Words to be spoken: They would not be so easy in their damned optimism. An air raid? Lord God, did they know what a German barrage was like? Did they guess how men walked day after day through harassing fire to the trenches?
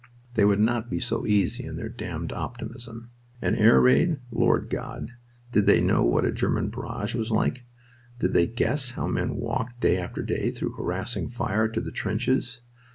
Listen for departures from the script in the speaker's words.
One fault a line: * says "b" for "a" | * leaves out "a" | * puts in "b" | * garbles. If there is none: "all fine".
all fine